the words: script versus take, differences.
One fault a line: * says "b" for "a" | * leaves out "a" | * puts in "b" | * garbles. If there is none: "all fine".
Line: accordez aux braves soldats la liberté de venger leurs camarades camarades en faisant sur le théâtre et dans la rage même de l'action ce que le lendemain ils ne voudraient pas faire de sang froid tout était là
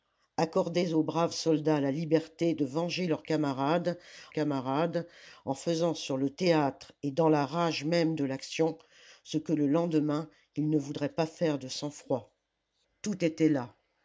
all fine